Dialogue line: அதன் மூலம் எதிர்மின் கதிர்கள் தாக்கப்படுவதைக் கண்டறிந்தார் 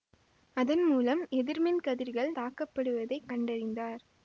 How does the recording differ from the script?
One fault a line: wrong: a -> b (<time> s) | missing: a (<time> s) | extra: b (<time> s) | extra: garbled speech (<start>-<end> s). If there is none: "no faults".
no faults